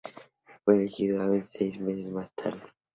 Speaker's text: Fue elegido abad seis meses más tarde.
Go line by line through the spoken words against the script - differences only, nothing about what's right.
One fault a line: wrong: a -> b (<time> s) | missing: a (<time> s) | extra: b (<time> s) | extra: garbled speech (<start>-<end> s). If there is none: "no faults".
no faults